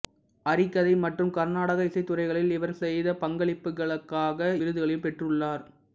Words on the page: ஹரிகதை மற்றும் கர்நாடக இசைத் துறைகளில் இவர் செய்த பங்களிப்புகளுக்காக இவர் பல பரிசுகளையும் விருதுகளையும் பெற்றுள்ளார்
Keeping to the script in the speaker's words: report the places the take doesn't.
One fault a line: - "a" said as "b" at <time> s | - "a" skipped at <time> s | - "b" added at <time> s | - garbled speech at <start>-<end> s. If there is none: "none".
- "இவர் பல பரிசுகளையும்" skipped at 4.4 s